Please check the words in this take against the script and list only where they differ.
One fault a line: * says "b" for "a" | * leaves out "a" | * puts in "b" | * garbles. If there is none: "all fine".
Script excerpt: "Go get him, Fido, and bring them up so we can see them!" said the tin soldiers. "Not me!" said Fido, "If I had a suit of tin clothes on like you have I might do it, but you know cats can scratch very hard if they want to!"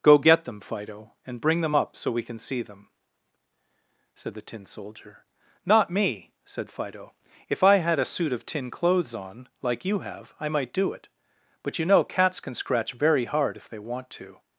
* says "them" for "him"
* says "soldier" for "soldiers"